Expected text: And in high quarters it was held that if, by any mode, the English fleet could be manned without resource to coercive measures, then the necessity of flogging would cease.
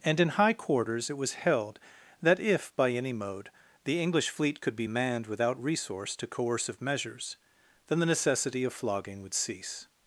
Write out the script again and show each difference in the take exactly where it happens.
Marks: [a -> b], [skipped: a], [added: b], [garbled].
And in high quarters it was held that if, by any mode, the English fleet could be manned without resource to coercive measures, then the necessity of flogging would cease.